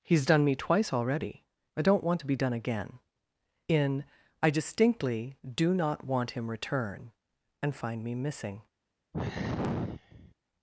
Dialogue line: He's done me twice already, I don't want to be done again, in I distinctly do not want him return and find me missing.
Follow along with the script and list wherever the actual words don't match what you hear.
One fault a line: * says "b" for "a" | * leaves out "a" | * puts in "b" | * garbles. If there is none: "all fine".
all fine